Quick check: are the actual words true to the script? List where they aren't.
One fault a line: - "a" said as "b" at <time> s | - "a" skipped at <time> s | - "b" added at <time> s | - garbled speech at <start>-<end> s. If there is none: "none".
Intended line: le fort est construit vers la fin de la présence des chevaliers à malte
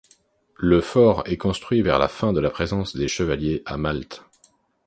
none